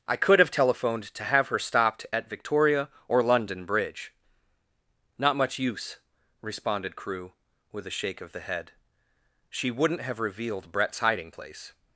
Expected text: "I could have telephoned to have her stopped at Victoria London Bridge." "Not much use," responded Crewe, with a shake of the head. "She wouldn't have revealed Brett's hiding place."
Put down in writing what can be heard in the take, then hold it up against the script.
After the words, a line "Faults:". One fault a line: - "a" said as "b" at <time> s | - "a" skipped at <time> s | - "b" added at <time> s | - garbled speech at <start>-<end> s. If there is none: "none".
"I could have telephoned to have her stopped at Victoria or London Bridge." "Not much use," responded Crewe, with a shake of the head. "She wouldn't have revealed Brett's hiding place."
Faults:
- "or" added at 3.1 s